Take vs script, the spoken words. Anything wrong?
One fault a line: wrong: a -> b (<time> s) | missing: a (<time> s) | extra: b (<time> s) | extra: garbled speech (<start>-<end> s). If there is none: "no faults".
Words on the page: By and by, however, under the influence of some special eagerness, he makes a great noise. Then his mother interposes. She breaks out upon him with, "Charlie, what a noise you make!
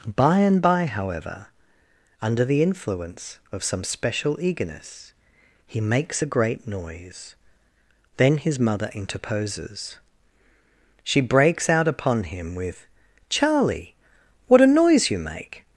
no faults